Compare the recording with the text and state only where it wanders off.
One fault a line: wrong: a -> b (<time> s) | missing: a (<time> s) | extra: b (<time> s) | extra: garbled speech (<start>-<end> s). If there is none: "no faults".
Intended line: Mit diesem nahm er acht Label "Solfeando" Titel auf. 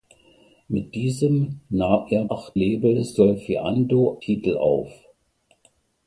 no faults